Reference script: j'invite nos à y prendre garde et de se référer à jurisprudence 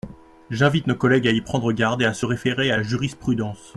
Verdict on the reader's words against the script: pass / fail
fail